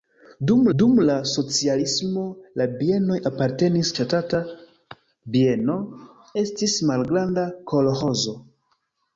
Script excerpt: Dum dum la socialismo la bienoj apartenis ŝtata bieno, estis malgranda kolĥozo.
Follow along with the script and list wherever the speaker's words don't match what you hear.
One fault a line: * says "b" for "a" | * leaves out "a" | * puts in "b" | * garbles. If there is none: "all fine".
all fine